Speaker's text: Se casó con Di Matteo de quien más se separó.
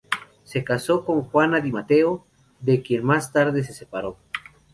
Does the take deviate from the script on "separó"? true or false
false